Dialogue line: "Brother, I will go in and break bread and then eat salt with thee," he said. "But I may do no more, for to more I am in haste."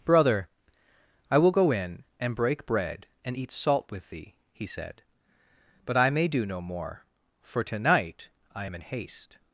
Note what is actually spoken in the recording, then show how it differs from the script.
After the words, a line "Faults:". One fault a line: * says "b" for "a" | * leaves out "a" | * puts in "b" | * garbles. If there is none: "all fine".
"Brother, I will go in and break bread and eat salt with thee," he said. "But I may do no more, for to night I am in haste."
Faults:
* leaves out "then"
* says "night" for "more"